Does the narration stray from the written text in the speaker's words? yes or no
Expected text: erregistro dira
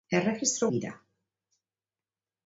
no